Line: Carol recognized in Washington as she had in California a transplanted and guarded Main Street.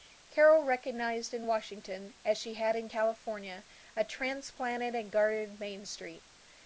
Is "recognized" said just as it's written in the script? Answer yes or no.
yes